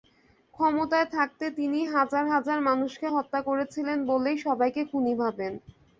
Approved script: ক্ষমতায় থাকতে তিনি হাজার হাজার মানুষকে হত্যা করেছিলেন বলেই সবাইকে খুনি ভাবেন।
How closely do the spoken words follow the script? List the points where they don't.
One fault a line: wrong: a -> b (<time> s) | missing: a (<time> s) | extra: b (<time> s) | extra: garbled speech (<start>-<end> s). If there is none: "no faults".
no faults